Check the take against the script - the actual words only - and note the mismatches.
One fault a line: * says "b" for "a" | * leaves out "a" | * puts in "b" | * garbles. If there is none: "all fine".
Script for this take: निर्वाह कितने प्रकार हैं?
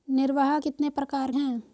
all fine